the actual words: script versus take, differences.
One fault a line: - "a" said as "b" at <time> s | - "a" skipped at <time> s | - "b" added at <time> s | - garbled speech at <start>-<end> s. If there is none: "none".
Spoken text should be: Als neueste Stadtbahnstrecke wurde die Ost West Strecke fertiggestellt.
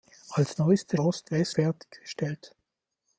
- "Stadtbahnstrecke wurde die" skipped at 1.0 s
- "Strecke" skipped at 1.5 s